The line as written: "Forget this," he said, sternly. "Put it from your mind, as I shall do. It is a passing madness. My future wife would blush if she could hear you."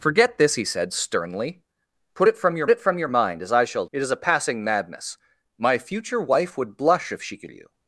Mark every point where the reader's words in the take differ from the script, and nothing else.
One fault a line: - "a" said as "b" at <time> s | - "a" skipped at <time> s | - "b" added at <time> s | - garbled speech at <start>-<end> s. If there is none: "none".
- "it from your" added at 2.7 s
- "do" skipped at 3.9 s
- "hear" skipped at 7.5 s